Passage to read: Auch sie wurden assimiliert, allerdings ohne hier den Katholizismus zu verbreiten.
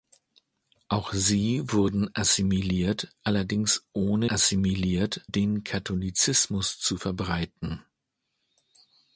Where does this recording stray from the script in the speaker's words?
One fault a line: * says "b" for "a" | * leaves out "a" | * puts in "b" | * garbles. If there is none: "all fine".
* says "assimiliert" for "hier"